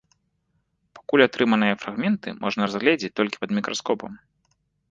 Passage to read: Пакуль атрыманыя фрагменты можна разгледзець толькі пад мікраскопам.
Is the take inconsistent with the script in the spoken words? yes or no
no